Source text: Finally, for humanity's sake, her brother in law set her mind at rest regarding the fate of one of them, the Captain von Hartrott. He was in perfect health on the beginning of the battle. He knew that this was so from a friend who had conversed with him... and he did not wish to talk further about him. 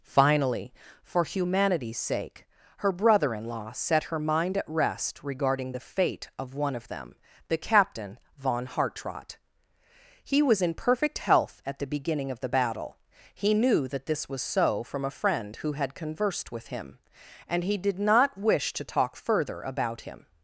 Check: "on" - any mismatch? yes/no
yes